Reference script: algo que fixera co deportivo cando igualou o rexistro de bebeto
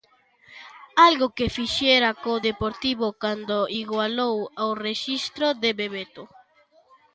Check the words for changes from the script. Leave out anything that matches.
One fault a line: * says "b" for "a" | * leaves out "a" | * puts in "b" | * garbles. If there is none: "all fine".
all fine